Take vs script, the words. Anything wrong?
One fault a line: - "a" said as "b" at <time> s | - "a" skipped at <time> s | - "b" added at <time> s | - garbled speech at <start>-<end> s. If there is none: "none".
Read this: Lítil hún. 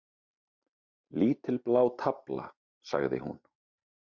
- "blá tafla sagði" added at 1.7 s